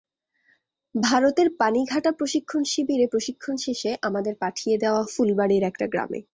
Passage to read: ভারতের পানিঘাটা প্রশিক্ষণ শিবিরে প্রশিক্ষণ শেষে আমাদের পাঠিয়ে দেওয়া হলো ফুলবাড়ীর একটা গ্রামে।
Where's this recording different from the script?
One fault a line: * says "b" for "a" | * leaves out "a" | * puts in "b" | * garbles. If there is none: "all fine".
* leaves out "হলো"